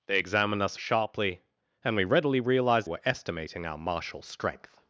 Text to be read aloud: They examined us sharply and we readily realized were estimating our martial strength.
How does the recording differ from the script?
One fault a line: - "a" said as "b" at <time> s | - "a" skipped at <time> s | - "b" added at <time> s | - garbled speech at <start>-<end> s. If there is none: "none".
none